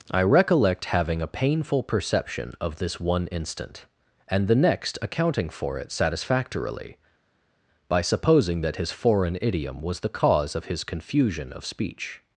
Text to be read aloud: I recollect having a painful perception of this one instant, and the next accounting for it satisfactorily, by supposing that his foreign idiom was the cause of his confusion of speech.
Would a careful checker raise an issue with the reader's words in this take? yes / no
no